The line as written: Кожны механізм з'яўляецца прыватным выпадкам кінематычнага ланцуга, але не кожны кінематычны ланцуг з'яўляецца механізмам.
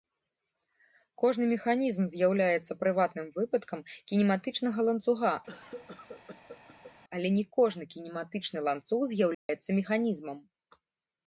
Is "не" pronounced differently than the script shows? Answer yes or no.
no